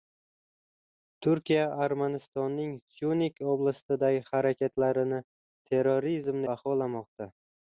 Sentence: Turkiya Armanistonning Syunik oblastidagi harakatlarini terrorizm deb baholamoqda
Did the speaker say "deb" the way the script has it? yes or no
no